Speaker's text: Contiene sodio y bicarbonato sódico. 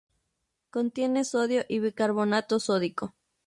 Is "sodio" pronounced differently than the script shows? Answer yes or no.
no